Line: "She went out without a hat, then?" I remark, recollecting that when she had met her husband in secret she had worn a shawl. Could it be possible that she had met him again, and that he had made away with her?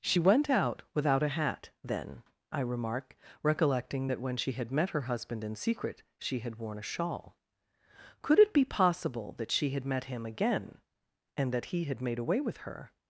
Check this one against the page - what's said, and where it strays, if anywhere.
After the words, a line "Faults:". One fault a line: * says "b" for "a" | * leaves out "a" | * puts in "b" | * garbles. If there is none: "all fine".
"She went out without a hat, then?" I remark, recollecting that when she had met her husband in secret she had worn a shawl. Could it be possible that she had met him again, and that he had made away with her?
Faults:
all fine